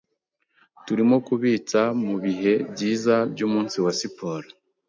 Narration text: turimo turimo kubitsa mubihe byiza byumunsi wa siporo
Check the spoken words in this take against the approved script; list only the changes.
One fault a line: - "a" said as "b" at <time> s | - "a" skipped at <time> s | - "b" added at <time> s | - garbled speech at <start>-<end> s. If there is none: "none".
- "turimo" skipped at 1.1 s